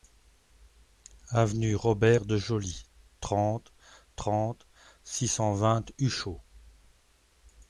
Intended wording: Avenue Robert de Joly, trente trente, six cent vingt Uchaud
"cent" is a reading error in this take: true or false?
false